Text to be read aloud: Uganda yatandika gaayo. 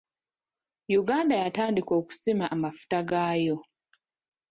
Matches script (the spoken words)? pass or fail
fail